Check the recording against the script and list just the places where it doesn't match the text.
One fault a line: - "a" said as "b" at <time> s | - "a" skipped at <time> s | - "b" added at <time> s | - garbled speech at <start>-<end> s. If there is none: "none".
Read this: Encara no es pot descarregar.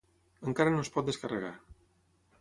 none